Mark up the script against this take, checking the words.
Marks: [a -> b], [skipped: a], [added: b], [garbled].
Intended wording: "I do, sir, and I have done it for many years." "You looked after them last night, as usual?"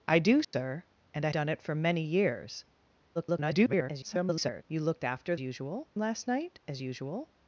"I do, sir, and I [skipped: have] done it for many years." [garbled] "You looked after [them -> usual] last night, as usual?"